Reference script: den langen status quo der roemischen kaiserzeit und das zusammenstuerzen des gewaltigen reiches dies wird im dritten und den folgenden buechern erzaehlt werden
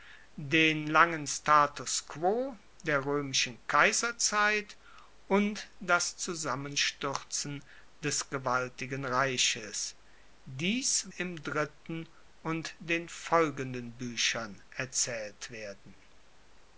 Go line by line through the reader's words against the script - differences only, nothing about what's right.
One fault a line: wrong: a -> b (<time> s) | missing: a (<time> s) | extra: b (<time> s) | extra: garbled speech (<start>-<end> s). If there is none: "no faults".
missing: wird (11.1 s)